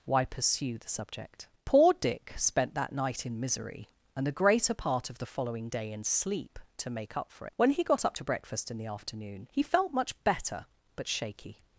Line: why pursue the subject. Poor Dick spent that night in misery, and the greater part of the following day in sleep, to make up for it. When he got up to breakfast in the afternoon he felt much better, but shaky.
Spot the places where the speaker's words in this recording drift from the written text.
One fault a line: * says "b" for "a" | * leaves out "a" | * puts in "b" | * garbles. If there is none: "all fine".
* leaves out "it"